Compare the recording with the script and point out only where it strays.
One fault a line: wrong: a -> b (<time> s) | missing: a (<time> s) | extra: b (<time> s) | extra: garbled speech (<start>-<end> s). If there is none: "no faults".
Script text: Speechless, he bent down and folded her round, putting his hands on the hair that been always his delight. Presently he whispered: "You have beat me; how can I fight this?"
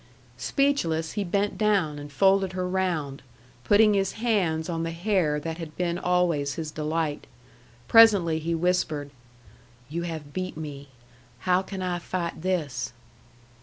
extra: had (5.6 s)